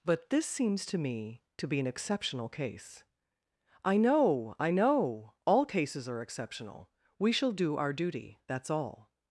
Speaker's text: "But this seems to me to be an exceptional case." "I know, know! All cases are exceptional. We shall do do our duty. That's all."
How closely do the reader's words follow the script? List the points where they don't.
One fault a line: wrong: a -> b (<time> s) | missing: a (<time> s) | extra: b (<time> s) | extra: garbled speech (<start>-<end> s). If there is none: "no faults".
extra: I (4.6 s)
missing: do (7.8 s)